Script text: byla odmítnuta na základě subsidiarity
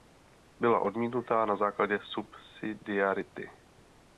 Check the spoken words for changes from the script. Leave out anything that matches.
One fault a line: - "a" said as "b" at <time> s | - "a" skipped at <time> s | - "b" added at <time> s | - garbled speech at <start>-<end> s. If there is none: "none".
none